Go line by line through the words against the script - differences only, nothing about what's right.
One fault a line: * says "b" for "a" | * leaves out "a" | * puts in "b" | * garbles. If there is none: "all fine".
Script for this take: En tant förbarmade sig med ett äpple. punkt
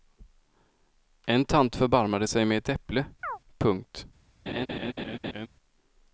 all fine